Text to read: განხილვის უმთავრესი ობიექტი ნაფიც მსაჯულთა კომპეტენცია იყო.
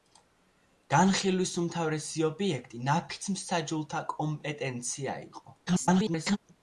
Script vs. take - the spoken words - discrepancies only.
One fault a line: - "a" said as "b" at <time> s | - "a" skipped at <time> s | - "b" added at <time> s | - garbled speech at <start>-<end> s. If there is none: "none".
- garbled speech at 5.7-6.4 s